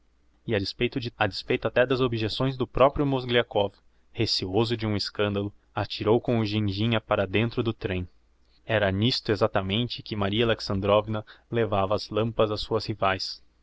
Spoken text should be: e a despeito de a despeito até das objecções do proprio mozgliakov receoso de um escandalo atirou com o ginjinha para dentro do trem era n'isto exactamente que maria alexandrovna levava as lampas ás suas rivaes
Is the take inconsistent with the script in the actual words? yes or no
no